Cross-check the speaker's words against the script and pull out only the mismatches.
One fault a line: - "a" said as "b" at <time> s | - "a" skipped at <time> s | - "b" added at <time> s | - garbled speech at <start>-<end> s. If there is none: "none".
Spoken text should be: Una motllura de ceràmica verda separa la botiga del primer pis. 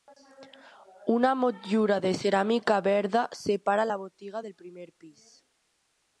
none